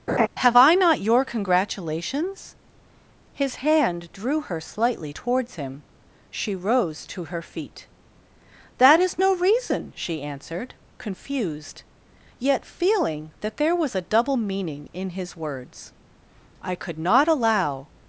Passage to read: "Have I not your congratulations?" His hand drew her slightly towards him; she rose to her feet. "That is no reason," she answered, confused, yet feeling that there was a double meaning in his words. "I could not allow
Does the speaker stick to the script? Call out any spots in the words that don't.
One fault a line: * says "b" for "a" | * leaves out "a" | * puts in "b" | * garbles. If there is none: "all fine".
all fine